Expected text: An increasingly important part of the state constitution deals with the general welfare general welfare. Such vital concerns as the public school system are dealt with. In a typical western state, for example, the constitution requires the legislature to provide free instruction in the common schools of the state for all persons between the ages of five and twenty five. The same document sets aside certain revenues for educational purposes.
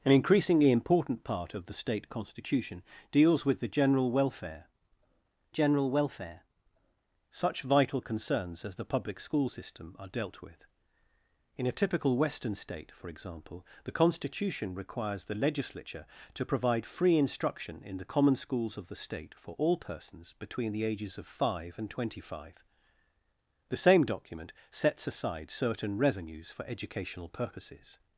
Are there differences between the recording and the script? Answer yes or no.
no